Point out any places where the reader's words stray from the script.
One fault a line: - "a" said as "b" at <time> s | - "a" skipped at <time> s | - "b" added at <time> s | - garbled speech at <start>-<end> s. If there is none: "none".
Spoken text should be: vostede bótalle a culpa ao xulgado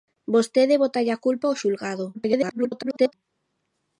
- garbled speech at 2.1-3.1 s